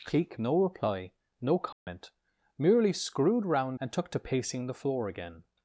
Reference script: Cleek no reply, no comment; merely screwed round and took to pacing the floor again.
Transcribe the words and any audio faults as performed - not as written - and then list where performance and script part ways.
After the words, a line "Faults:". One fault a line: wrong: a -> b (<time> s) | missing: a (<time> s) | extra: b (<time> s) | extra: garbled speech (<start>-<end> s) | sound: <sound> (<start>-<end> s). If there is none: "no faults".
Cleek no reply, no comment; merely screwed round and took to pacing the floor again.
Faults:
sound: dropout (1.7-1.9 s)